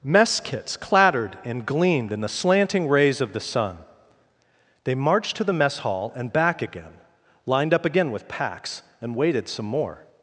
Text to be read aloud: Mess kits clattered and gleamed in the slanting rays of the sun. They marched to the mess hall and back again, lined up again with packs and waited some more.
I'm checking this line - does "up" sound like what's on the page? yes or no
yes